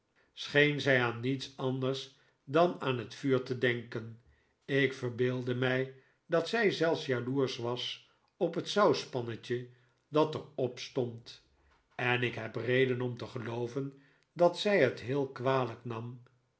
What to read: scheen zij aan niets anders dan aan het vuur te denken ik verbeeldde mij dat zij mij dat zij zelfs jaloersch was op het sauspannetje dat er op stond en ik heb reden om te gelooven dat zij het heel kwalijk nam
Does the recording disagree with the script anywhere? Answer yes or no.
yes